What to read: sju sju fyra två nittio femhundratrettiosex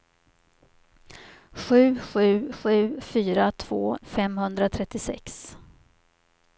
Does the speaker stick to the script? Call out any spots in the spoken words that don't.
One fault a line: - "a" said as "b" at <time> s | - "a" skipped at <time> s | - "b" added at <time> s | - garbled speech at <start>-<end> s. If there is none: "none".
- "sju" added at 2.5 s
- "nittio" skipped at 4.0 s